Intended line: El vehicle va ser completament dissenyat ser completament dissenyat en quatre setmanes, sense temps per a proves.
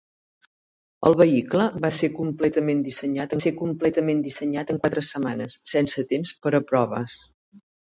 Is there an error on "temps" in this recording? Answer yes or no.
no